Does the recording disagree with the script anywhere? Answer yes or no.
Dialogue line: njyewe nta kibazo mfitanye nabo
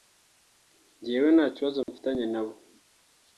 no